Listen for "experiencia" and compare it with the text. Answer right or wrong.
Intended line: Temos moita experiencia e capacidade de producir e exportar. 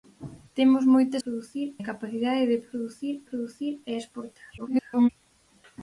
wrong